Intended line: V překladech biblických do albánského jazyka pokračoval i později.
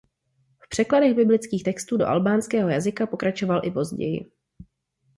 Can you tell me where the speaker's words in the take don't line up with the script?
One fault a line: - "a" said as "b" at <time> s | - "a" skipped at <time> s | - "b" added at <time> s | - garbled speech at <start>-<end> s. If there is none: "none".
- "textů" added at 1.6 s